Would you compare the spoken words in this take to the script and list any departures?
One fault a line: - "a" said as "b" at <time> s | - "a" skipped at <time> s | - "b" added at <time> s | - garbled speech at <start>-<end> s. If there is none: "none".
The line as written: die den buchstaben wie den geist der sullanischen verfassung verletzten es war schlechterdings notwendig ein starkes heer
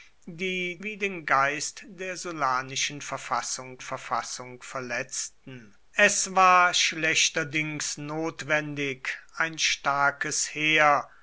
- "den buchstaben" skipped at 0.8 s
- "verfassung" added at 3.8 s